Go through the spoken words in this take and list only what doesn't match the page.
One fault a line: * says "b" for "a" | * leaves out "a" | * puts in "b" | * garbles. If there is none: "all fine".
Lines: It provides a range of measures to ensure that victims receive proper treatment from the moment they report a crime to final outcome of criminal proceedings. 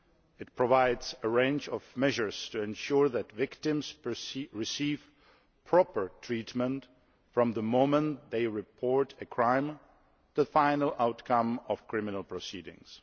all fine